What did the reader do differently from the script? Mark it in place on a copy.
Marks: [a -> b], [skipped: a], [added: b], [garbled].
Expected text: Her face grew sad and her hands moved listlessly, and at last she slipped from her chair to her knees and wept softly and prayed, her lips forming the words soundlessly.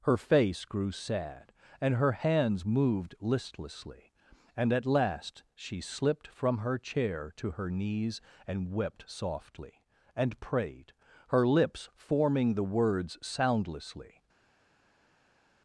Her face grew sad and her hands moved listlessly, and at last she slipped from her chair to her knees and wept softly and prayed, her lips forming the words soundlessly.